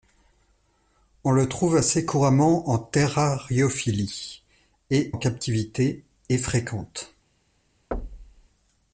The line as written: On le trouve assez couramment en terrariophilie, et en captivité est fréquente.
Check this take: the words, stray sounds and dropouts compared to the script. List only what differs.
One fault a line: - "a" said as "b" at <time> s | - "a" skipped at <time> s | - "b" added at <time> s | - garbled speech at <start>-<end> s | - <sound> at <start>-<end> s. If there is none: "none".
- thud at 7.9-8.5 s